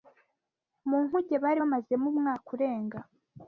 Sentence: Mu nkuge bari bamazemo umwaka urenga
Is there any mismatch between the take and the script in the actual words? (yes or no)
no